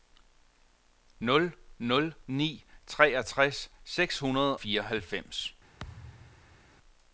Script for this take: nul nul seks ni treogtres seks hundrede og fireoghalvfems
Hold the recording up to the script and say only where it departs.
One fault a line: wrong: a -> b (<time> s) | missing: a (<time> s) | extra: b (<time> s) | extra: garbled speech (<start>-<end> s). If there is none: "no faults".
missing: seks (2.1 s)
missing: og (4.6 s)